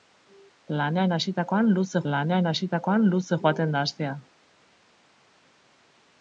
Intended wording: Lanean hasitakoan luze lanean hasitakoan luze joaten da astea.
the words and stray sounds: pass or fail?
pass